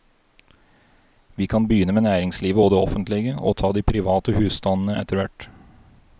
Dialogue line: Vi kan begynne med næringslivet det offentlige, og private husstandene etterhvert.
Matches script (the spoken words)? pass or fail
fail